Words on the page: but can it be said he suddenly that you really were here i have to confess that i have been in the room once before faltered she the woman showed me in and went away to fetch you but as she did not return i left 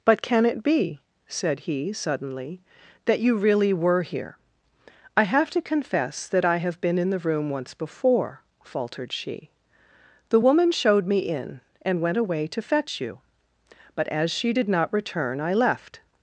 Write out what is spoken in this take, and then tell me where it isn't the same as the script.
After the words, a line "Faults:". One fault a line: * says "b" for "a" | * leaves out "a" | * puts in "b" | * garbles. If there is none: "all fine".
but can it be said he suddenly that you really were here i have to confess that i have been in the room once before faltered she the woman showed me in and went away to fetch you but as she did not return i left
Faults:
all fine